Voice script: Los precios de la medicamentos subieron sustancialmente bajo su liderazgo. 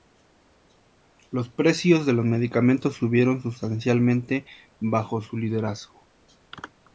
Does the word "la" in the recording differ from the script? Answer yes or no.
yes